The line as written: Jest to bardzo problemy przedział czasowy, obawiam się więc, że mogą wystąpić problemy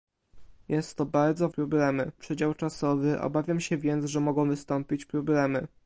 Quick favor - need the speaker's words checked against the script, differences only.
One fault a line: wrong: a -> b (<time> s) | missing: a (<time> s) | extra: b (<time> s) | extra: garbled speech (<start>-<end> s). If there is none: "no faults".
no faults